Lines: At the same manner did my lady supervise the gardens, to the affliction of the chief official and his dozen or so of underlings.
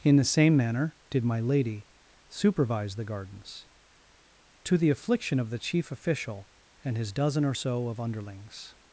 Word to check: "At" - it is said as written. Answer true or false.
false